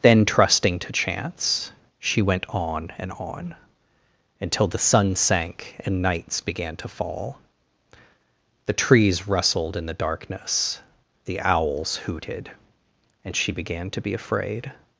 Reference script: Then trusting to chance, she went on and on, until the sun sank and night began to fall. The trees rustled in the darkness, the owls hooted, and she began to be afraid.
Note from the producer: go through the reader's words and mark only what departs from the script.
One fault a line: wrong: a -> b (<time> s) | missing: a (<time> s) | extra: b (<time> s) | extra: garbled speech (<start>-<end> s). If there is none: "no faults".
wrong: night -> nights (6.0 s)